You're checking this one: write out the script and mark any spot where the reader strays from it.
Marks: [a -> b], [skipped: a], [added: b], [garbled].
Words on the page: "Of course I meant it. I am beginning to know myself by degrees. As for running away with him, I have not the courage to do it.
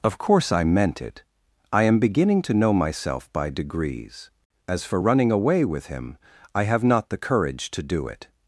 "Of course I meant it. I am beginning to know myself by degrees. As for running away with him, I have not the courage to do it.